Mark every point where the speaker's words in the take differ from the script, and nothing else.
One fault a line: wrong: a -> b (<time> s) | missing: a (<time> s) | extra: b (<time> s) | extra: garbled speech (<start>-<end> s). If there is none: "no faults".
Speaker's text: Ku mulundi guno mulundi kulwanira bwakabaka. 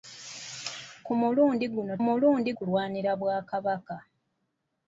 no faults